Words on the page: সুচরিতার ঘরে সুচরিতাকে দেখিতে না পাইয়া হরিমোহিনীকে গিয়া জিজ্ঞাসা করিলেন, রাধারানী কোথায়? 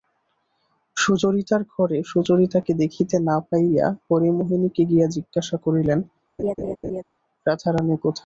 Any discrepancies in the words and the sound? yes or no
yes